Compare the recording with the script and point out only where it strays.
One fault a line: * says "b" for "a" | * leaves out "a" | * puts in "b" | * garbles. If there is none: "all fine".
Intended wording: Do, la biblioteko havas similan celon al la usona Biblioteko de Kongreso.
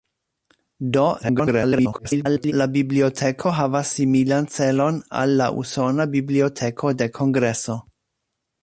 * garbles